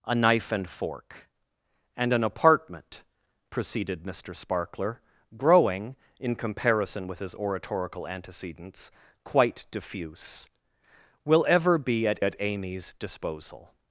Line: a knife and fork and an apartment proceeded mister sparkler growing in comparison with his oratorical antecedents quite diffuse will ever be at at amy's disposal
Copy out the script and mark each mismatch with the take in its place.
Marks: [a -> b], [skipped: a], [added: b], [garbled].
a knife and fork and an apartment proceeded mister sparkler growing in comparison with his oratorical antecedents quite diffuse will ever be at at amy's disposal